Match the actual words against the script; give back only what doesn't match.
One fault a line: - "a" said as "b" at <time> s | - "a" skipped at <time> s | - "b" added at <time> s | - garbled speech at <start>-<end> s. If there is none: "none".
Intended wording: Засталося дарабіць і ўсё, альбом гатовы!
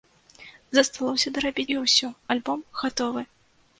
none